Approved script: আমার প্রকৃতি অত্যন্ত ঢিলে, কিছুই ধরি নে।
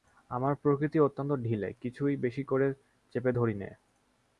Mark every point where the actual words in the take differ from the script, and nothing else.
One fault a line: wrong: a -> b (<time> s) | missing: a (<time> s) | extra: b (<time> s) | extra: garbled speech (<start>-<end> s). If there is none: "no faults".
extra: বেশি করে চেপে (2.2 s)